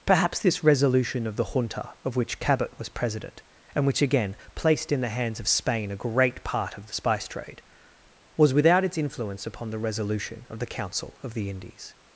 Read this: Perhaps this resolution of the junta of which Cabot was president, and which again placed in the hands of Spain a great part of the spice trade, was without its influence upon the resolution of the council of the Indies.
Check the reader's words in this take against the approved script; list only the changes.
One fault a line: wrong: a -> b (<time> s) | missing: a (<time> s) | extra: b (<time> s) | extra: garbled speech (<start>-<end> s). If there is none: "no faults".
no faults